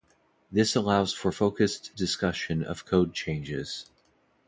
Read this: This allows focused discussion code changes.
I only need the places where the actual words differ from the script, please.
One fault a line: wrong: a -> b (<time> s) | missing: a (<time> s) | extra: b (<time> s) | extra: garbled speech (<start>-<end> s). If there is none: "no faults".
extra: for (1.1 s)
extra: of (2.6 s)